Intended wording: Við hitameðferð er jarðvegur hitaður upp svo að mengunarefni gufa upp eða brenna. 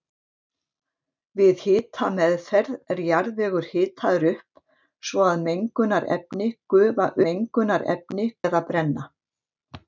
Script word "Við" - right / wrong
right